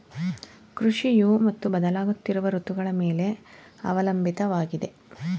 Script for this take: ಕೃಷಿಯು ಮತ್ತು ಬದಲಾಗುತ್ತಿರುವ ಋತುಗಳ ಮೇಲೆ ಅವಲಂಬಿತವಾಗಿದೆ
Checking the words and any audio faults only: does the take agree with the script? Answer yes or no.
yes